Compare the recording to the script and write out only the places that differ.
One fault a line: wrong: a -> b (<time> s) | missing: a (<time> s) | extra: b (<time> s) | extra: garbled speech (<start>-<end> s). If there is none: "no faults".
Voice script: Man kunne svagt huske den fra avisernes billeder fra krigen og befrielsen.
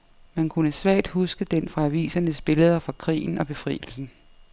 no faults